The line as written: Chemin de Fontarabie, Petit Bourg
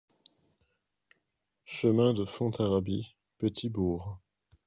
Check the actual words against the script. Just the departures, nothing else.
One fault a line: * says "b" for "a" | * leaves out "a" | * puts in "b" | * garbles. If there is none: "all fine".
all fine